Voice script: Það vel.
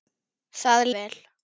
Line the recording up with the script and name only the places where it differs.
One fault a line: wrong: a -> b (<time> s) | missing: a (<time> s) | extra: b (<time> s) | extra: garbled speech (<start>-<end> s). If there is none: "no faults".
no faults